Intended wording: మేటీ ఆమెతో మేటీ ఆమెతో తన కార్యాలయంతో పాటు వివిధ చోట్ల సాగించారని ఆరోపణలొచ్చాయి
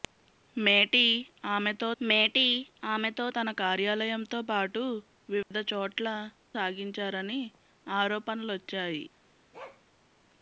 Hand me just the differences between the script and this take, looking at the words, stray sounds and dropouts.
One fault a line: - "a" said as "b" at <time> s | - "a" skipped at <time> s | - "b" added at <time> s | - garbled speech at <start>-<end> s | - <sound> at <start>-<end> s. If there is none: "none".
- dropout at 5.4-5.5 s
- bark at 9.5-9.8 s